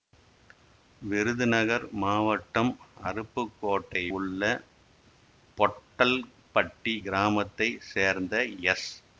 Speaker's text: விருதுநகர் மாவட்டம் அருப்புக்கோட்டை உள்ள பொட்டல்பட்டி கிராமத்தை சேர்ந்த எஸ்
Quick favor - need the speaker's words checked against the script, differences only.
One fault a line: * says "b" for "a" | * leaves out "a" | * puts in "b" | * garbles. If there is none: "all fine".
all fine